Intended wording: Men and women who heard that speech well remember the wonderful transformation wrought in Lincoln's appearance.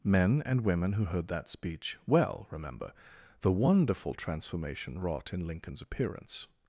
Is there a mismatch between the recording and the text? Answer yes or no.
no